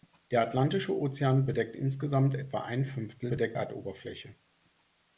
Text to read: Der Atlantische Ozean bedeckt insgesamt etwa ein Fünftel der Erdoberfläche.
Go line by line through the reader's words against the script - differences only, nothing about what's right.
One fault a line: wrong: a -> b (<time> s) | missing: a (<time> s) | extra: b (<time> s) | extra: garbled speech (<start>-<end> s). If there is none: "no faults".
wrong: der -> bedeckt (3.3 s)